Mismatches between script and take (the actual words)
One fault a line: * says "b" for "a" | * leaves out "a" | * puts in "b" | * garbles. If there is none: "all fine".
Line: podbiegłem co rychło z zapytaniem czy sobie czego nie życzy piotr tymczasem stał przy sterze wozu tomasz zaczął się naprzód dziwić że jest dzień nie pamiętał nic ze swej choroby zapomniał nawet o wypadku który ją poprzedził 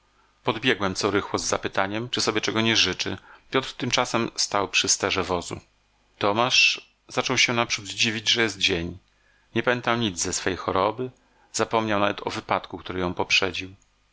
all fine